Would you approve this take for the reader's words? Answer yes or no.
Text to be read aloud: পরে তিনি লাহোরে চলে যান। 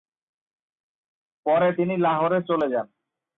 yes